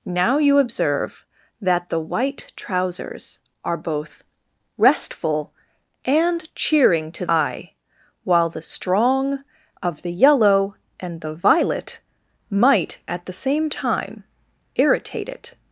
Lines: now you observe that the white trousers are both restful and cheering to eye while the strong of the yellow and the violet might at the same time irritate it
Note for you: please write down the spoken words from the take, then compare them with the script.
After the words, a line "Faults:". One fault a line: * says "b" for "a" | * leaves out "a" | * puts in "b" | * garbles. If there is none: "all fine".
now you observe that the white trousers are both restful and cheering to eye while the strong of the yellow and the violet might at the same time irritate it
Faults:
all fine